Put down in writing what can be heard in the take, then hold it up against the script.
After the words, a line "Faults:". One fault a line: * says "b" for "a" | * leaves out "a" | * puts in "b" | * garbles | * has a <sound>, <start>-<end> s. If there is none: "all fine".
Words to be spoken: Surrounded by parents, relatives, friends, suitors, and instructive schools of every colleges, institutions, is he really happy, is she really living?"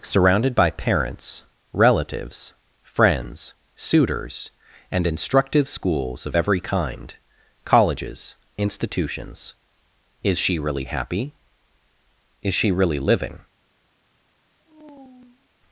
Surrounded by parents, relatives, friends, suitors, and instructive schools of every kind, colleges, institutions, is she really happy, is she really living?"
Faults:
* puts in "kind"
* says "she" for "he"
* has a sigh, 14.6-15.5 s